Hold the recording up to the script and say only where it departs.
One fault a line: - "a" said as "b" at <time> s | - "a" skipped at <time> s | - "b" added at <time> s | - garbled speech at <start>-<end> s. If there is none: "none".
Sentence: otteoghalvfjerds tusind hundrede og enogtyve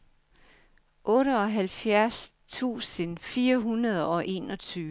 - "fire" added at 3.2 s